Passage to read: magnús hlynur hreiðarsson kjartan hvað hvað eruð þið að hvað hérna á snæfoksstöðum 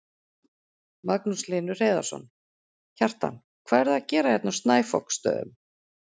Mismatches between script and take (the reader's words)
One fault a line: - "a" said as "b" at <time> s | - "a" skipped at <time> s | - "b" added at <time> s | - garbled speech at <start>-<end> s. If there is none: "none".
- "hvað" skipped at 3.8 s
- "hvað" said as "gera" at 4.2 s